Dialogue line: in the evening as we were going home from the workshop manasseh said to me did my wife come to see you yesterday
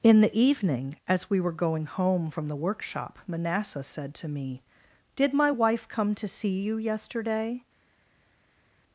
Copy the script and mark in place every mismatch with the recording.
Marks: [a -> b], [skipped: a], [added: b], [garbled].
in the evening as we were going home from the workshop manasseh said to me did my wife come to see you yesterday